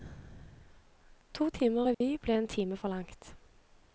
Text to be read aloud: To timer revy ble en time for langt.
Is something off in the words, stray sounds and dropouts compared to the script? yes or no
yes